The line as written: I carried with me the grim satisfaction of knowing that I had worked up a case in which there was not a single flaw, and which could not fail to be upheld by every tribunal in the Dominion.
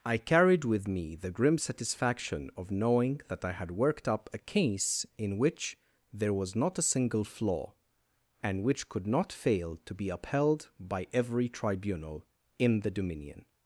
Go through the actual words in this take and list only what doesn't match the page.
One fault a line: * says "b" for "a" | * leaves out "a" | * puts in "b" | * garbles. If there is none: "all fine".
all fine